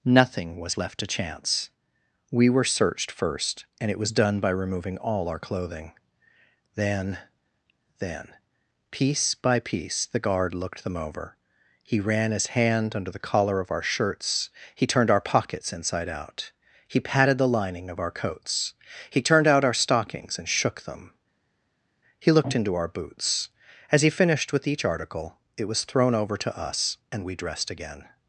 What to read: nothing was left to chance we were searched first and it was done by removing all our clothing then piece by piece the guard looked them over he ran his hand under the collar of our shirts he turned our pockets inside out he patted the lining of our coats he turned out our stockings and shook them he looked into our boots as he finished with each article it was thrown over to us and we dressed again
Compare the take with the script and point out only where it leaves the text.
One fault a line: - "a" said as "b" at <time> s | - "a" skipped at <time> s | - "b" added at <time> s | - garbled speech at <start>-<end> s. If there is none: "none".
- "then" added at 8.0 s